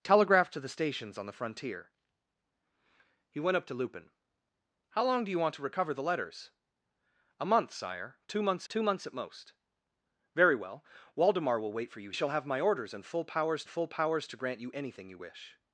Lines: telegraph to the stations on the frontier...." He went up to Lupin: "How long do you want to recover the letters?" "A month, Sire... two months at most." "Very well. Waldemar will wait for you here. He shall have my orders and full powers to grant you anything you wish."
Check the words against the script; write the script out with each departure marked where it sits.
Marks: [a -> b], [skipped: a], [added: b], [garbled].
telegraph to the stations on the frontier...." He went up to Lupin: "How long do you want to recover the letters?" "A month, Sire... two months [added: two months] at most." "Very well. Waldemar will wait for you [skipped: here. He] shall have my orders and full powers [added: full powers] to grant you anything you wish."